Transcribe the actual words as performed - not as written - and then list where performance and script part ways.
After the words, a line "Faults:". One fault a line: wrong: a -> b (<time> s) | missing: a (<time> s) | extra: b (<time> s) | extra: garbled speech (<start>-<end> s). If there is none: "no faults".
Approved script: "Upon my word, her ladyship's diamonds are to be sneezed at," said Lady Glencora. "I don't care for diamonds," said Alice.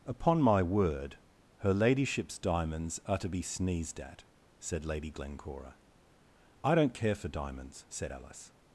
"Upon my word, her ladyship's diamonds are to be sneezed at," said Lady Glencora. "I don't care for diamonds," said Alice.
Faults:
no faults